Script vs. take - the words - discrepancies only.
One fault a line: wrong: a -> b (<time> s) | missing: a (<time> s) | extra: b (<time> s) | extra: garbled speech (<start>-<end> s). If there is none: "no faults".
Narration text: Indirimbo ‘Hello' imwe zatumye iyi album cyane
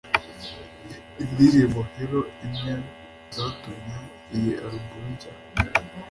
no faults